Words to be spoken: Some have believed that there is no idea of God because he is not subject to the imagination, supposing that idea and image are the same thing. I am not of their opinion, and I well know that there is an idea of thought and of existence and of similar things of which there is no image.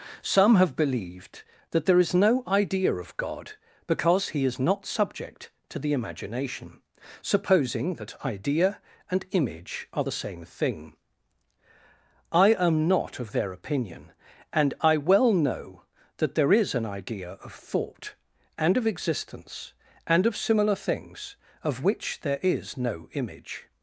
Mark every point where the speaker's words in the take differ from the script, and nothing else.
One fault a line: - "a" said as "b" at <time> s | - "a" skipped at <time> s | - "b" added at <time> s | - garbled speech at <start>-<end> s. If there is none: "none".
none